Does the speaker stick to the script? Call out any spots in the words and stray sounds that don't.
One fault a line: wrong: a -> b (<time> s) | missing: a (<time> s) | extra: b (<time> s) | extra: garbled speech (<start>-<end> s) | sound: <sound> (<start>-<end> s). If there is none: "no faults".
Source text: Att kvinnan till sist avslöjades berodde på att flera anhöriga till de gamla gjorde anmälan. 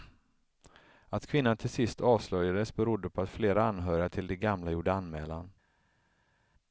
no faults